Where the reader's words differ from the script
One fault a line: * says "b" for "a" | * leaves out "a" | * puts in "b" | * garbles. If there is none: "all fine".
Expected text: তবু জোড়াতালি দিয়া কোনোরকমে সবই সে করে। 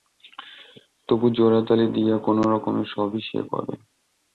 all fine